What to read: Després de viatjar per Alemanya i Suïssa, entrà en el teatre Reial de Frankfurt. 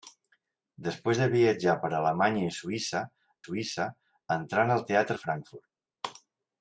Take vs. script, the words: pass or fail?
fail